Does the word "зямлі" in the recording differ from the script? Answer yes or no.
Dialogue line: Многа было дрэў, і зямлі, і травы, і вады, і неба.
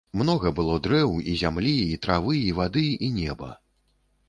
no